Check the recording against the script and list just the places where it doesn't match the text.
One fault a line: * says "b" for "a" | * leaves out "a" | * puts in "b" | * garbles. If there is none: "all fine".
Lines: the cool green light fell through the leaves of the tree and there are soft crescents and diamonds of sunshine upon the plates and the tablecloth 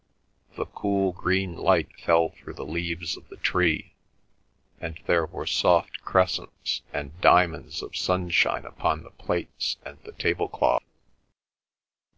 * says "were" for "are"